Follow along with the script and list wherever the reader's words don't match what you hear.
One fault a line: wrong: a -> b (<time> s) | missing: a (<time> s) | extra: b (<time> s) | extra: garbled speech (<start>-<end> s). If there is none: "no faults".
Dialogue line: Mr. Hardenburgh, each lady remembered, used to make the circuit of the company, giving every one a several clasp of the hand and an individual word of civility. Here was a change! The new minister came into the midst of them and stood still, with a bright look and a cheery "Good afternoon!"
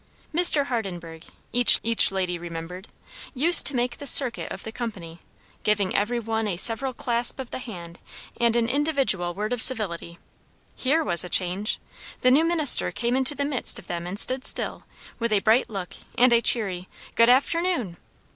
extra: each (1.8 s)